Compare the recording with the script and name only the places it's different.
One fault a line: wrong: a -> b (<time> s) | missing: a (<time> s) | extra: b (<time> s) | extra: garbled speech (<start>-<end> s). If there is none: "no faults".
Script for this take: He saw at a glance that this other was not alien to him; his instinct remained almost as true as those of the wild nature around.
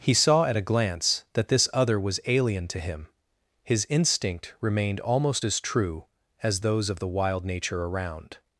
missing: not (2.2 s)